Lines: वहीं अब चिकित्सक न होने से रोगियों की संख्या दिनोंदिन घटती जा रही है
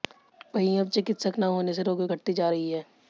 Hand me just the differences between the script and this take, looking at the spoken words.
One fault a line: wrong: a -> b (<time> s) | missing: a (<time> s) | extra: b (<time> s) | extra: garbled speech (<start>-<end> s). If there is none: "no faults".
missing: की संख्या दिनोंदिन (2.1 s)